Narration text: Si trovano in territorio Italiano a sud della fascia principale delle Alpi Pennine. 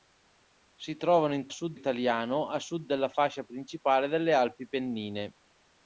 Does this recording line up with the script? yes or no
no